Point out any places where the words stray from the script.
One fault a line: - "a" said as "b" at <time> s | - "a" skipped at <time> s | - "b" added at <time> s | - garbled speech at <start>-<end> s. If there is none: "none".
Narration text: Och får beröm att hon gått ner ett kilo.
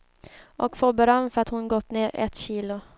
- "för" added at 1.3 s